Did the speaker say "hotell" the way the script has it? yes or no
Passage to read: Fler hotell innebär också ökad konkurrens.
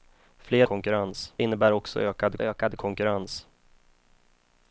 no